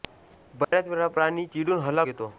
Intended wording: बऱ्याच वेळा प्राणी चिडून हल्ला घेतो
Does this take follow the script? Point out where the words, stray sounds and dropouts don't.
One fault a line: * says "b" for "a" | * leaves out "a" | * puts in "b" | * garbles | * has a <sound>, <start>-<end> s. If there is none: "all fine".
* has a dropout, 0.6-0.7 s